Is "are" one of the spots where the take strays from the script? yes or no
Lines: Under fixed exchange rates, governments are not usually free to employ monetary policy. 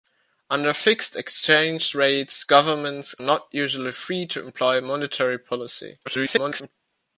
yes